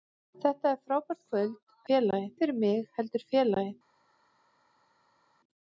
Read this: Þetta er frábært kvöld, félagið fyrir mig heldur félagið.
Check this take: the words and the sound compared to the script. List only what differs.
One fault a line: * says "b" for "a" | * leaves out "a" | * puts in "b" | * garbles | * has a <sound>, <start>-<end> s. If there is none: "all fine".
all fine